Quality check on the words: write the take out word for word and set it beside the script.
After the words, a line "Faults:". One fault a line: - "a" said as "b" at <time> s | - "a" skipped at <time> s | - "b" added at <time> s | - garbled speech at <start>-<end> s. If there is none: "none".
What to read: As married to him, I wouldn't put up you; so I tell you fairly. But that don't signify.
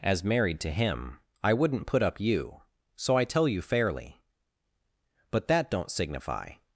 As married to him, I wouldn't put up you; so I tell you fairly. But that don't signify.
Faults:
none